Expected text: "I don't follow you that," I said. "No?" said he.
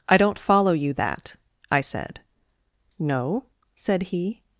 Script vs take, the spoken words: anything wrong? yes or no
no